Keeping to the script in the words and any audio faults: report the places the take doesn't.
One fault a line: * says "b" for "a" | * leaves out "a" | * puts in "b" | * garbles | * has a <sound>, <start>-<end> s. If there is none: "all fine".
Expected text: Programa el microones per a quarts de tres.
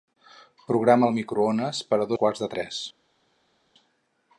all fine